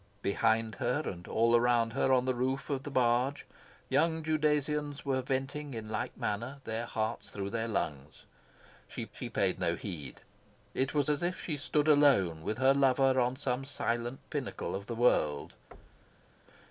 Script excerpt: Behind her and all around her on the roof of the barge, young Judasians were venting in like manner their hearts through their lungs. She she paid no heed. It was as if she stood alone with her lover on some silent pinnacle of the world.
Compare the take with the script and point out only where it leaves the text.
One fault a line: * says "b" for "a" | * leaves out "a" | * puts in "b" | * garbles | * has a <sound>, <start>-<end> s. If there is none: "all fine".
* has a thud, 15.7-16.3 s